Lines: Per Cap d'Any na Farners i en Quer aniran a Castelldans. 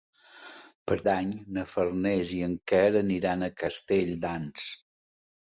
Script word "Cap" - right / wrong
wrong